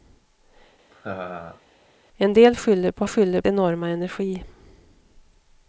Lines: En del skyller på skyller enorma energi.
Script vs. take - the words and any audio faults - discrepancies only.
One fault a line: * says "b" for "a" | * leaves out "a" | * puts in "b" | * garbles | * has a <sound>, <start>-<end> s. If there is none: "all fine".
* has a laugh, 0.9-1.6 s